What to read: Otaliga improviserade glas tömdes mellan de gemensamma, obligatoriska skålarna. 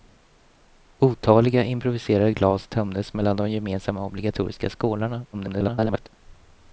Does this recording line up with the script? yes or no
no